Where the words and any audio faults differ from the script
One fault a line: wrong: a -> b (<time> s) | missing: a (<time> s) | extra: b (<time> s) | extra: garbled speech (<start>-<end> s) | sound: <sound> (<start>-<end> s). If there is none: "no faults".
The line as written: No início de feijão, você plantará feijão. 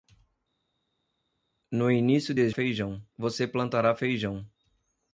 no faults